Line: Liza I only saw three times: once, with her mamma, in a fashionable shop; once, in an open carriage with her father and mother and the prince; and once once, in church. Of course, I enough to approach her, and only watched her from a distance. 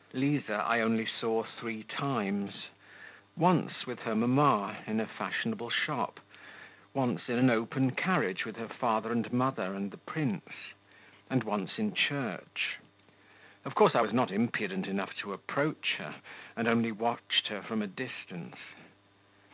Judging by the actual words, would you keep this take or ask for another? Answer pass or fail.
fail